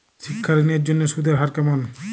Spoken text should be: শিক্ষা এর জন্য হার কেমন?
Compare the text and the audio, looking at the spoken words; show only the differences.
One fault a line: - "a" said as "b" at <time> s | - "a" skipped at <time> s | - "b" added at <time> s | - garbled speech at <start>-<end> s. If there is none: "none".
- "ঋণ" added at 0.5 s
- "সুদের" added at 1.1 s